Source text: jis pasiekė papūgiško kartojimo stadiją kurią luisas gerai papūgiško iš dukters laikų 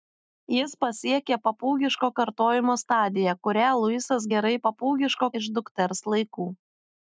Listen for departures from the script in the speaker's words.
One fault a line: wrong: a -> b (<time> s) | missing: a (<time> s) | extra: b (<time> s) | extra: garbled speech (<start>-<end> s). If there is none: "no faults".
no faults